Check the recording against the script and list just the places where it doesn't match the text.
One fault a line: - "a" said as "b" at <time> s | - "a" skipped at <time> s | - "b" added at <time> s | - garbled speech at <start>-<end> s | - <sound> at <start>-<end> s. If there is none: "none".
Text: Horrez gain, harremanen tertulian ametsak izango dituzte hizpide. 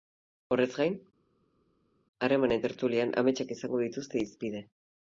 none